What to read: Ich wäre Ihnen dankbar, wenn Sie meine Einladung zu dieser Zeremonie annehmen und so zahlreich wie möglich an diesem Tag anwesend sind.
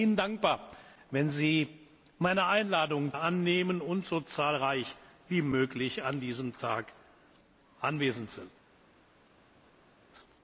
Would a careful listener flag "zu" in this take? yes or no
yes